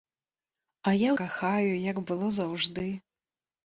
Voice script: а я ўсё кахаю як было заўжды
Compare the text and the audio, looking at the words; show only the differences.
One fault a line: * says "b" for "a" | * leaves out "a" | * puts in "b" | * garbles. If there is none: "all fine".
* leaves out "ўсё"